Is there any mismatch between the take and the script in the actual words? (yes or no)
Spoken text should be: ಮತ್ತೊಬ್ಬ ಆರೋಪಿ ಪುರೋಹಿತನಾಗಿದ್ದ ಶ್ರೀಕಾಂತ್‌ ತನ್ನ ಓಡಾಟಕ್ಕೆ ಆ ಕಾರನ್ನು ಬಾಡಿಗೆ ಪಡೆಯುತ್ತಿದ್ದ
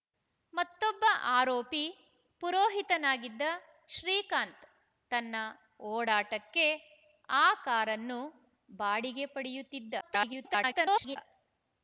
yes